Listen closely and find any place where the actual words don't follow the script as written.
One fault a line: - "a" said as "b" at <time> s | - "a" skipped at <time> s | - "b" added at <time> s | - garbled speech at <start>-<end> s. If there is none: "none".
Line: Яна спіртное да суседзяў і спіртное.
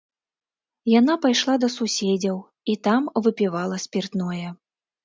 - "спіртное" said as "пайшла" at 1.3 s
- "там выпівала" added at 2.9 s